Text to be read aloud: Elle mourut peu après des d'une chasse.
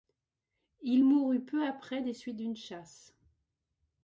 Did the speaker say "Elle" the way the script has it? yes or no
no